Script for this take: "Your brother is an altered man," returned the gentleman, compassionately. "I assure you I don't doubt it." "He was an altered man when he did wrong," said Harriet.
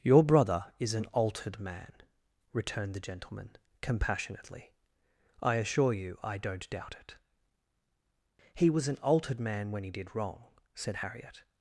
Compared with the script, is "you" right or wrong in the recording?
right